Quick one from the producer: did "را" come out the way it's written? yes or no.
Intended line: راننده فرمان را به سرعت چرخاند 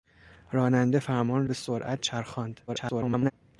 no